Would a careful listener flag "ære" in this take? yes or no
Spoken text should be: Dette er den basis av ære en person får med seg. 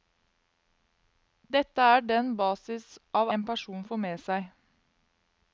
yes